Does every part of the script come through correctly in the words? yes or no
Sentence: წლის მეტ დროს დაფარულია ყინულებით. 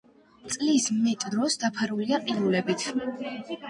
yes